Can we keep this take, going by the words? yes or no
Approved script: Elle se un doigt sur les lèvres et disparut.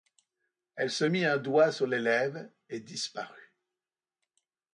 no